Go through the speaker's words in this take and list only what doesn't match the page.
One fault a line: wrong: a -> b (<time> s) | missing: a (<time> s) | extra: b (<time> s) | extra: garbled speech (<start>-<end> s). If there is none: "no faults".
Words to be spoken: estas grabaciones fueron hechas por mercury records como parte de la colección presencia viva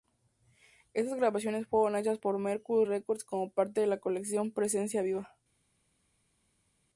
no faults